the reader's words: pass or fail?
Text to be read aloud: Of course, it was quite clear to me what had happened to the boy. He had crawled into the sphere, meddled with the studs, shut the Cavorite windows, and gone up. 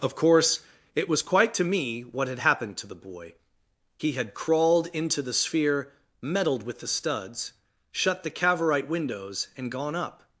fail